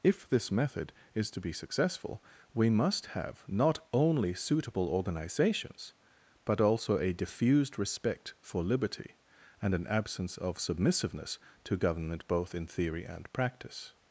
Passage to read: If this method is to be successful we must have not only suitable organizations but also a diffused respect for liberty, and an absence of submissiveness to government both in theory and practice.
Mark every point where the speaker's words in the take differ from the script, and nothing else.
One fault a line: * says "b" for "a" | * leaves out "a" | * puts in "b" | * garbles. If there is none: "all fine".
all fine